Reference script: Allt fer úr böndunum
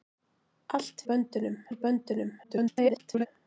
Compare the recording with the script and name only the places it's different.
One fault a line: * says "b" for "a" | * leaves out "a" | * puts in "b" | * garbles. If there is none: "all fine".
* says "böndunum" for "fer"
* garbles